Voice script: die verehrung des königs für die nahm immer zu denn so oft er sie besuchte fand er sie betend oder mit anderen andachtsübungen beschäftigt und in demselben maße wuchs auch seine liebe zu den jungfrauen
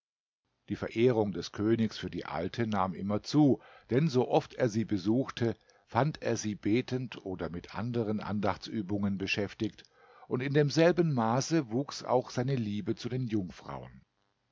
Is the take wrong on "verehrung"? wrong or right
right